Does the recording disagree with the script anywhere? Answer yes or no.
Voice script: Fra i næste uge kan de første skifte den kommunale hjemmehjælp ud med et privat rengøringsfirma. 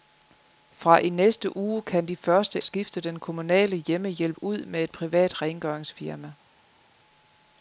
no